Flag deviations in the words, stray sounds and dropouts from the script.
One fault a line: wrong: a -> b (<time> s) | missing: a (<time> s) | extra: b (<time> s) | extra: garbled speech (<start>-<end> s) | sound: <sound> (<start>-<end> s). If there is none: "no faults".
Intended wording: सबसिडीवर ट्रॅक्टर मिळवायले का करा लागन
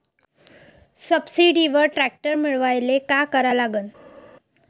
no faults